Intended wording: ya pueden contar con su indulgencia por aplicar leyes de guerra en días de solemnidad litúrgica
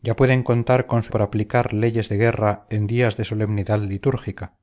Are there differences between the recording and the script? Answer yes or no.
yes